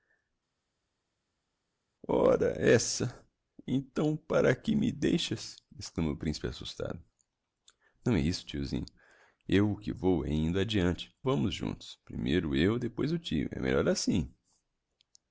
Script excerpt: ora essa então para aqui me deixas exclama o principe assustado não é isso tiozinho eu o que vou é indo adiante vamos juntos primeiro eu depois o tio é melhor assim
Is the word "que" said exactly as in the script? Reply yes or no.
yes